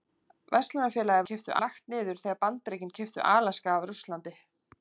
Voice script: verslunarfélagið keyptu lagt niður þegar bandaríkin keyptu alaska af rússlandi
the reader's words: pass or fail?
pass